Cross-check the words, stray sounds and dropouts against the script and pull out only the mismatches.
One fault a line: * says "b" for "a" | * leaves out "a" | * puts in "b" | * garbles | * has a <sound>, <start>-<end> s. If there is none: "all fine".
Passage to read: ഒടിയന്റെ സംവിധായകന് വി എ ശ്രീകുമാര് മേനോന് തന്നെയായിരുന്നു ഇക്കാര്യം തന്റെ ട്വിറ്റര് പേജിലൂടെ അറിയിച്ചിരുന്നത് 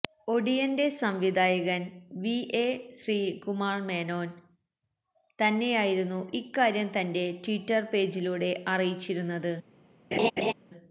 * has a laugh, 10.1-10.5 s